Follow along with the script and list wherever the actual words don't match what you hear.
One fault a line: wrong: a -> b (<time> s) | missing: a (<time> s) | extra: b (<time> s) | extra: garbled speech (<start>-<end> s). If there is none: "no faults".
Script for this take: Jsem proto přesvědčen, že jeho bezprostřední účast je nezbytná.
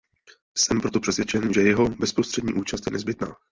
no faults